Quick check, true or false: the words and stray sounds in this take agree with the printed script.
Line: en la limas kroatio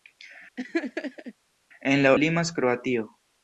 false